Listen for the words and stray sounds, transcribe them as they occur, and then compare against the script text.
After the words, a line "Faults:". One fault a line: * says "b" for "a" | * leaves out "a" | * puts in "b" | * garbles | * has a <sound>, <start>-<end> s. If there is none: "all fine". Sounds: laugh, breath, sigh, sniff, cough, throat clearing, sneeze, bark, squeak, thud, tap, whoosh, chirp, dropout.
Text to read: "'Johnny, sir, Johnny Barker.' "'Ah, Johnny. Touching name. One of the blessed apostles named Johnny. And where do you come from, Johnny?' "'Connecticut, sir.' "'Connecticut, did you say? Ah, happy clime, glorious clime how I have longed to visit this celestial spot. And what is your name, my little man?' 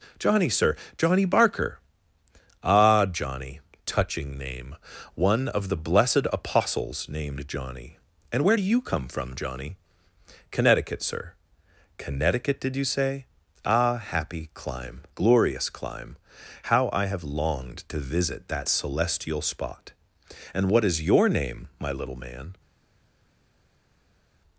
"'Johnny, sir, Johnny Barker.' "'Ah, Johnny. Touching name. One of the blessed apostles named Johnny. And where do you come from, Johnny?' "'Connecticut, sir.' "'Connecticut, did you say? Ah, happy clime, glorious clime how I have longed to visit that celestial spot. And what is your name, my little man?'
Faults:
* says "that" for "this"